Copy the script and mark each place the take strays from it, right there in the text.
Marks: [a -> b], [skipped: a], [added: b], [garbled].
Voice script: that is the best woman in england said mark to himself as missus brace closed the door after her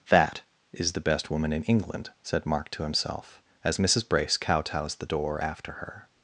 that is the best woman in england said mark to himself as missus brace [closed -> kowtows] the door after her